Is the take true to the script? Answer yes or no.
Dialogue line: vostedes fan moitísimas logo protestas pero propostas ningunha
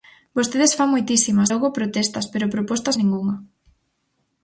yes